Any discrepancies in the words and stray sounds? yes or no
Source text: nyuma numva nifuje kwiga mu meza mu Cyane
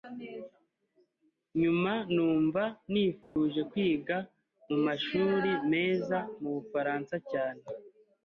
yes